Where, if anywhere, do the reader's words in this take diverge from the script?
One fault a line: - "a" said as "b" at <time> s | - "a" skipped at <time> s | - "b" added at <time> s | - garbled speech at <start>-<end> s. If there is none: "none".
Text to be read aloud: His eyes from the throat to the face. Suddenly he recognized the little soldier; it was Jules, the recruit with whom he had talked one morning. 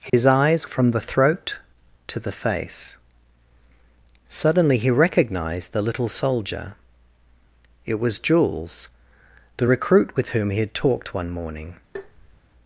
none